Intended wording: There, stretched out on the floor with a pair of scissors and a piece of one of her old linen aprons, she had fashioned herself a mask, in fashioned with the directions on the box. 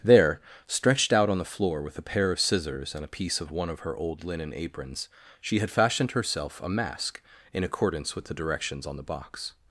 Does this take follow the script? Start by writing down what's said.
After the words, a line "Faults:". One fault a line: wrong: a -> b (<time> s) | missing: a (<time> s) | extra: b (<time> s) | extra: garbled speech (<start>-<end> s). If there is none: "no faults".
There, stretched out on the floor with a pair of scissors and a piece of one of her old linen aprons, she had fashioned herself a mask, in accordance with the directions on the box.
Faults:
wrong: fashioned -> accordance (7.6 s)